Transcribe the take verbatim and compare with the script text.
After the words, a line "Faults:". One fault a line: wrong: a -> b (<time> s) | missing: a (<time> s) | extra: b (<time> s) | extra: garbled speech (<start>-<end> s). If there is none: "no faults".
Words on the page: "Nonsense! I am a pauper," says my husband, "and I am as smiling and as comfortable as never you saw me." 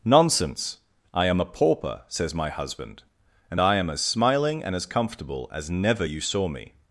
"Nonsense! I am a pauper," says my husband, "and I am as smiling and as comfortable as never you saw me."
Faults:
no faults